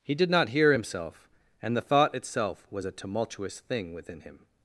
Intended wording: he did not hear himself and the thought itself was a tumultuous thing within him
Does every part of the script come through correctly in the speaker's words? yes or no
yes